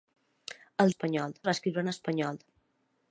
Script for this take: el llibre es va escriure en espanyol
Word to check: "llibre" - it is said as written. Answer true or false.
false